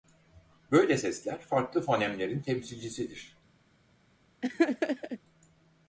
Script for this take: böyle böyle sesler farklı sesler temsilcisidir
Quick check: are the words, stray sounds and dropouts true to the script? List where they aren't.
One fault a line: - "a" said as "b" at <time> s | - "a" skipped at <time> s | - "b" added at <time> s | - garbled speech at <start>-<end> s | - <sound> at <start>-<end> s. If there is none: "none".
- "böyle" skipped at 1.0 s
- "sesler" said as "fonemlerin" at 1.8 s
- laugh at 4.4-5.2 s